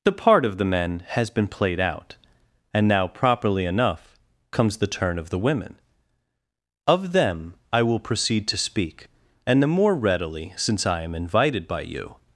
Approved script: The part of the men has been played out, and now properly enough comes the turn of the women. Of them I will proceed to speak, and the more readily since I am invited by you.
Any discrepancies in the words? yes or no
no